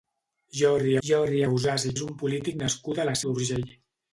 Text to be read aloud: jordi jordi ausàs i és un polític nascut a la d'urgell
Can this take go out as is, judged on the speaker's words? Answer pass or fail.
pass